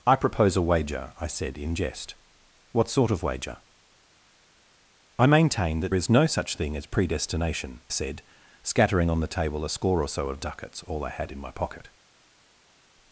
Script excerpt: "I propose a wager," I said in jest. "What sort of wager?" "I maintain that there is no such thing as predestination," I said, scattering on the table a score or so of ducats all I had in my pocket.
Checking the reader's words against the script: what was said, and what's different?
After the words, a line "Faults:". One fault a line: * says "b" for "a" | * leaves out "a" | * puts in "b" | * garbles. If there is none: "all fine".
"I propose a wager," I said in jest. "What sort of wager?" "I maintain that is no such thing as predestination," said, scattering on the table a score or so of ducats all I had in my pocket.
Faults:
* leaves out "there"
* leaves out "I"